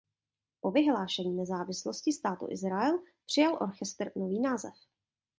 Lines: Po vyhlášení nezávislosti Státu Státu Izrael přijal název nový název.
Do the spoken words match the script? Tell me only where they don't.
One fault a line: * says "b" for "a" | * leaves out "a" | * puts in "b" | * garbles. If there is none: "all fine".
* leaves out "Státu"
* says "orchestr" for "název"